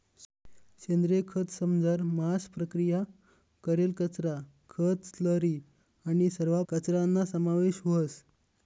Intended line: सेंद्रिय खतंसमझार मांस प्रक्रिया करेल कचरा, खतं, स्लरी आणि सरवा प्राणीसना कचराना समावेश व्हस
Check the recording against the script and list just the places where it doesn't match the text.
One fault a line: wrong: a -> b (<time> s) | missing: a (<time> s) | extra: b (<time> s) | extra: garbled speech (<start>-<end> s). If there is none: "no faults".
missing: प्राणीसना (6.6 s)